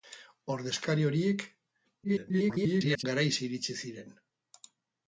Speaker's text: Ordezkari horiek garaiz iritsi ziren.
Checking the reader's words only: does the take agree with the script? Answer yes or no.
no